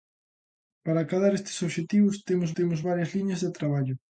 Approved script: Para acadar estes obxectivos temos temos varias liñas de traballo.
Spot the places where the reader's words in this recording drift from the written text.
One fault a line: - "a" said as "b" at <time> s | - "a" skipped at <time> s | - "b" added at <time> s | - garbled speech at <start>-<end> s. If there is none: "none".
none